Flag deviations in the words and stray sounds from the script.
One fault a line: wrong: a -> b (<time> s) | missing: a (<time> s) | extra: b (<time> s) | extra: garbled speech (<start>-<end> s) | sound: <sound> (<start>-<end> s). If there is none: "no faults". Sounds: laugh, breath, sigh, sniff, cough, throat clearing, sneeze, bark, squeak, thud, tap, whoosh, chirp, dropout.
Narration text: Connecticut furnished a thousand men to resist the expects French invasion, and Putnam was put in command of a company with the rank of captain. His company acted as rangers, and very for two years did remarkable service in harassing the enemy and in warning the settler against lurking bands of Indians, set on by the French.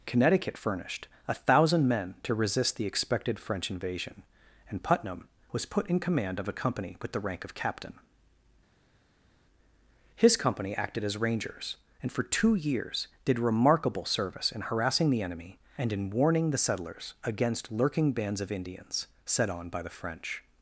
wrong: expects -> expected (2.9 s)
missing: very (12.1 s)
wrong: settler -> settlers (16.6 s)